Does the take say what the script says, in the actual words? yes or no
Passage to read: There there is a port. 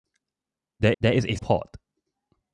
yes